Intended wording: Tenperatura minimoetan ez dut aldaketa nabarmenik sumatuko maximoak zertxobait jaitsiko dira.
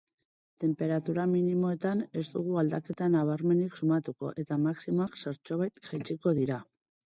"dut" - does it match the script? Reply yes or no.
no